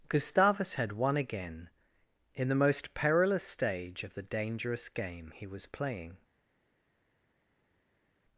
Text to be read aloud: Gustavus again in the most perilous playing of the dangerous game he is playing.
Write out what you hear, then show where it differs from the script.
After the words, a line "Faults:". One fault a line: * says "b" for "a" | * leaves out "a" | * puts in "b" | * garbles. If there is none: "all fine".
Gustavus had won again in the most perilous stage of the dangerous game he was playing.
Faults:
* puts in "had won"
* says "stage" for "playing"
* says "was" for "is"